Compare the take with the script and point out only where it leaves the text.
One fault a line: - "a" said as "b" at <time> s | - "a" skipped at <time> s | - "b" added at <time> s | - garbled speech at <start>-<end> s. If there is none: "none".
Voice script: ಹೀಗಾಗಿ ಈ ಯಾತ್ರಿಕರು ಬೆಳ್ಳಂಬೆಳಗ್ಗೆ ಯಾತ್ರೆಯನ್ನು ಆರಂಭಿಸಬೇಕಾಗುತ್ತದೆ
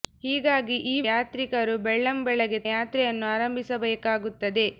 none